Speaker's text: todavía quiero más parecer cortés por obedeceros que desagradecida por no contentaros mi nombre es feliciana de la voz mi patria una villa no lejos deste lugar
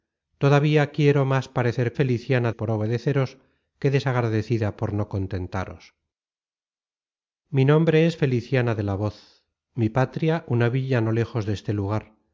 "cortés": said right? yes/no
no